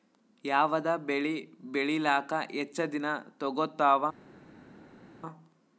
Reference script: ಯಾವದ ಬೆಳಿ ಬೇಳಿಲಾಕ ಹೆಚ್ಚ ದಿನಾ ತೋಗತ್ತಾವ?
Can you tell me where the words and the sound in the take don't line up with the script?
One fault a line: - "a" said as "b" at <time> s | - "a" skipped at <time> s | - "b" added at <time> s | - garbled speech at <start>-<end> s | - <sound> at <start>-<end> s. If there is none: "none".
none